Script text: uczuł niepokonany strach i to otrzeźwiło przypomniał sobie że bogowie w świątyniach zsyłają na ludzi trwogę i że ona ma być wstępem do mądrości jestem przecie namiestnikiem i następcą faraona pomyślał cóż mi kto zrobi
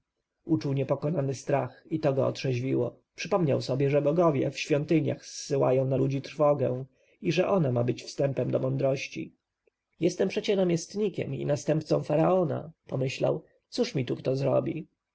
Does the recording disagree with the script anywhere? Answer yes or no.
yes